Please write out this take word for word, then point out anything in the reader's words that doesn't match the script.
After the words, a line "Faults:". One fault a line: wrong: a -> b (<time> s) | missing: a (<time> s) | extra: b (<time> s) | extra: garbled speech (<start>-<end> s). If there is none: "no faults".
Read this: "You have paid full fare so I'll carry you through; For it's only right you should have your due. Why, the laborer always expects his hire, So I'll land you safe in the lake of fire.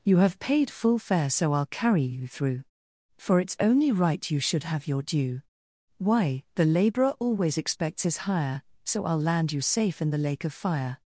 "You have paid full fare so I'll carry you through; For it's only right you should have your due. Why, the laborer always expects his hire, So I'll land you safe in the lake of fire.
Faults:
no faults